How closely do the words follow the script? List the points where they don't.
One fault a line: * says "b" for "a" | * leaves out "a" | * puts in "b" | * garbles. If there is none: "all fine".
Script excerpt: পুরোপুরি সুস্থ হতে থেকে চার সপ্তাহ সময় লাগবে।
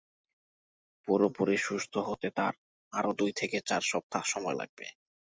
* puts in "তাঁর আরও দুই"